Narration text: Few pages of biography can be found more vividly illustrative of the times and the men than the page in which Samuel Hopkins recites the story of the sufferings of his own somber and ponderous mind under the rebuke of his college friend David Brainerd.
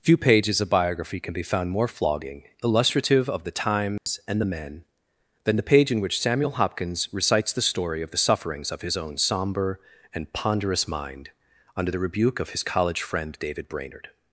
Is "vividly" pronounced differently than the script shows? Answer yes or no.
yes